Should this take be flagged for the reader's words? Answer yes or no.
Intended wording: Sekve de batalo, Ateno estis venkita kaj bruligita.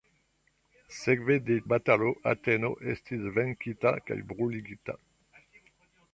no